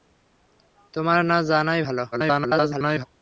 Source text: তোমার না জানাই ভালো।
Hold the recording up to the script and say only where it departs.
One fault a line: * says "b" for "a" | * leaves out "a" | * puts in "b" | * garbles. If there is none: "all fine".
* garbles